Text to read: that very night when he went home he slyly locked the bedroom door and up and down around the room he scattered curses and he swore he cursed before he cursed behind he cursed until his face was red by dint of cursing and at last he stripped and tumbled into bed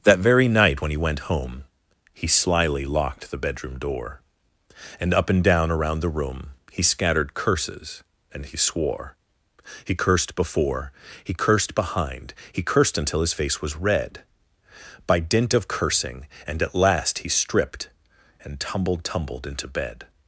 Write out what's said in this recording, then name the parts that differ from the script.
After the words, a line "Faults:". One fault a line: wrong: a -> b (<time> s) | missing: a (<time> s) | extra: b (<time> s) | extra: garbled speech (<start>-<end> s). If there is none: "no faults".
that very night when he went home he slyly locked the bedroom door and up and down around the room he scattered curses and he swore he cursed before he cursed behind he cursed until his face was red by dint of cursing and at last he stripped and tumbled tumbled into bed
Faults:
extra: tumbled (19.0 s)